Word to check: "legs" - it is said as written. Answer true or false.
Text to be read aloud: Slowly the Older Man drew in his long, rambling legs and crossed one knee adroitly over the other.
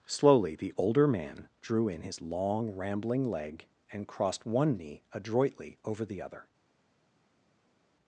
false